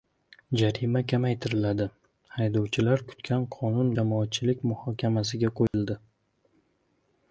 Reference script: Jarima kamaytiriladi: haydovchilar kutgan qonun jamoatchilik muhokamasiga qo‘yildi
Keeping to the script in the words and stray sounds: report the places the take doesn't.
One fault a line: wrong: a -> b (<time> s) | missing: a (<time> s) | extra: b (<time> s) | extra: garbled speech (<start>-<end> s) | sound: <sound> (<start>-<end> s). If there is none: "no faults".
sound: dropout (5.7-5.7 s)